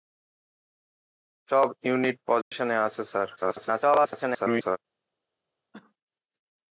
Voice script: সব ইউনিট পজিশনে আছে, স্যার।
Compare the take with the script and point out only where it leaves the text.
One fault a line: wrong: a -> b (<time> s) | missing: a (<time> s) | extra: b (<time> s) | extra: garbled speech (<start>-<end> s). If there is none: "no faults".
extra: garbled speech (3.4-4.8 s)